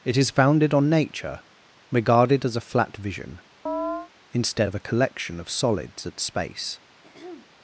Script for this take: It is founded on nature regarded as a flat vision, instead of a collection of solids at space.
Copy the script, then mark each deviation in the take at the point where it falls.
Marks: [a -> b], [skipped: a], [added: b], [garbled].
It is founded on nature regarded as a flat vision, instead of a collection of solids at space.